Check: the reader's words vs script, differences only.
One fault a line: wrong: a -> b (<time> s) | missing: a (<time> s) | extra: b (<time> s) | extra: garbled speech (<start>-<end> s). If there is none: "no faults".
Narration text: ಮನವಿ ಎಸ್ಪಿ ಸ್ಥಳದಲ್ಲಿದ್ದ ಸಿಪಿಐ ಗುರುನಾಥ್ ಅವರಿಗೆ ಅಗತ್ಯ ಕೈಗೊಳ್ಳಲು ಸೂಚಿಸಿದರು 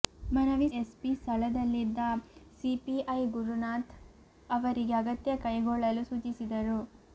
no faults